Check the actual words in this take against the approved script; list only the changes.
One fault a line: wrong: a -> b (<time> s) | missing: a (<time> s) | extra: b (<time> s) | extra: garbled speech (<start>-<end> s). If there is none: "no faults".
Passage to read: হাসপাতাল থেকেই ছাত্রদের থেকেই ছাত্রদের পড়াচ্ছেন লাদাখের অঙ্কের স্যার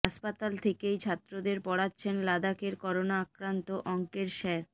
wrong: থেকেই ছাত্রদের পড়াচ্ছেন লাদাখের -> পড়াচ্ছেন লাদাখের করোনা আক্রান্ত (1.7 s)